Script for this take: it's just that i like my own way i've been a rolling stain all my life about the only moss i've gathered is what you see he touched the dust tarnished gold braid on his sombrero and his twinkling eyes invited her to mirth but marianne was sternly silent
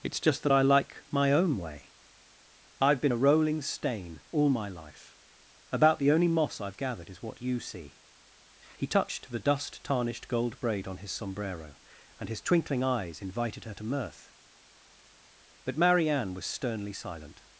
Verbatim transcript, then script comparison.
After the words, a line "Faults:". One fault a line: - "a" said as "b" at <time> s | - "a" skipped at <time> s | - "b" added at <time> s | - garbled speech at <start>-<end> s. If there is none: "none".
it's just that i like my own way i've been a rolling stain all my life about the only moss i've gathered is what you see he touched the dust tarnished gold braid on his sombrero and his twinkling eyes invited her to mirth but marianne was sternly silent
Faults:
none